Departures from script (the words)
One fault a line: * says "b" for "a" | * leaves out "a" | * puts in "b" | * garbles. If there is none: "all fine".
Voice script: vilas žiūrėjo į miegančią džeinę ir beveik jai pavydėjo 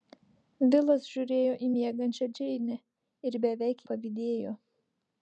* leaves out "jai"